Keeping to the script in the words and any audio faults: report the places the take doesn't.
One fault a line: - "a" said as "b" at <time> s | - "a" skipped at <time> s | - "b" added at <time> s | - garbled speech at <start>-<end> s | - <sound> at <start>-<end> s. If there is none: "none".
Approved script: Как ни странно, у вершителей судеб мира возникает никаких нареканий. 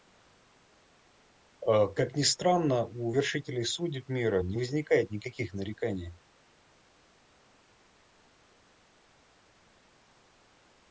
- "не" added at 4.4 s